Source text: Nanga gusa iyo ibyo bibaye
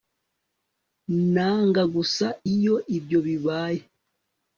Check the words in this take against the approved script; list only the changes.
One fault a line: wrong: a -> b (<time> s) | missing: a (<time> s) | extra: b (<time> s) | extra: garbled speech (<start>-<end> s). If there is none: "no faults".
no faults